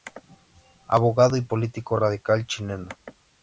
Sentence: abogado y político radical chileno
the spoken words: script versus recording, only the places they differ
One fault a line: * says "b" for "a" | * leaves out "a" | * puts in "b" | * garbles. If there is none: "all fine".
all fine